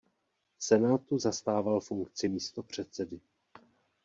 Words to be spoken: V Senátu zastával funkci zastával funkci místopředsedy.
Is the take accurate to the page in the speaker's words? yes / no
no